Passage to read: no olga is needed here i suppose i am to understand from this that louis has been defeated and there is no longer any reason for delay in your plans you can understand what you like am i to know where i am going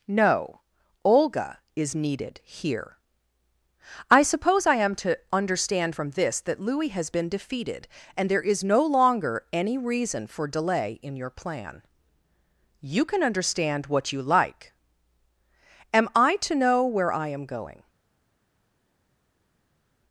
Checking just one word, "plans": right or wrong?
wrong